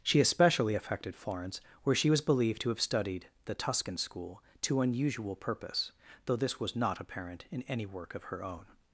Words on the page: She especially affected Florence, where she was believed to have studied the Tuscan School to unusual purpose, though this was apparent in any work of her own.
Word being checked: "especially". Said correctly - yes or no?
yes